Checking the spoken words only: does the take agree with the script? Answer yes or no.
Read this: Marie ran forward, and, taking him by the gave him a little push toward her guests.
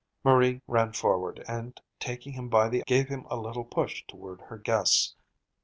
yes